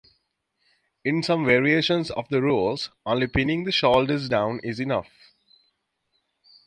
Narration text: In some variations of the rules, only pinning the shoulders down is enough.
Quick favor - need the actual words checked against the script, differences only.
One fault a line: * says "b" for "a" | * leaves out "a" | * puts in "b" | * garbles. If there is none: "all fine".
all fine